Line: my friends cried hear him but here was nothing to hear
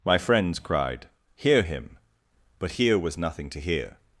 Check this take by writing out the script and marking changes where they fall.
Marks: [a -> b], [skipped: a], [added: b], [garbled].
my friends cried hear him but here was nothing to hear